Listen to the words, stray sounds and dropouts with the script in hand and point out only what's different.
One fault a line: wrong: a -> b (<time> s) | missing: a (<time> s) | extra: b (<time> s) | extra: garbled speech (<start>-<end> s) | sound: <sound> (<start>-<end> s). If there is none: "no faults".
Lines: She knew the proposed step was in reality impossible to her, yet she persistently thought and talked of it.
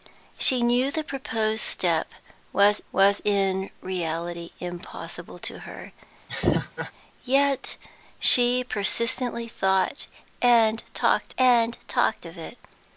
extra: was (2.9 s)
sound: laugh (6.3-6.9 s)
extra: and talked (11.4 s)